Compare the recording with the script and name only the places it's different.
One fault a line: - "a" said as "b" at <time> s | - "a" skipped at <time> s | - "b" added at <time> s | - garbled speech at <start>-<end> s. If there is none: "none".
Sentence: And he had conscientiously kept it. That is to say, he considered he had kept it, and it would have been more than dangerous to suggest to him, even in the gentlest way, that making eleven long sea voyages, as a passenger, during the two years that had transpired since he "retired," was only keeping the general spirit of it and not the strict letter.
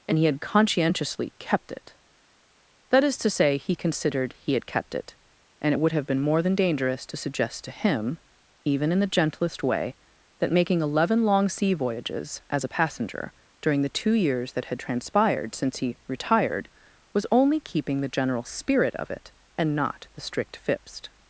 - "letter" said as "fipst" at 20.6 s